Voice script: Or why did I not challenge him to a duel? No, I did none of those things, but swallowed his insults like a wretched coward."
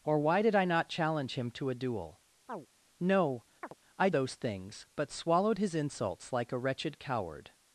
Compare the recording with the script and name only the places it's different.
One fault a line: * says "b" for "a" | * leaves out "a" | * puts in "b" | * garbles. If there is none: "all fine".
* leaves out "did none of"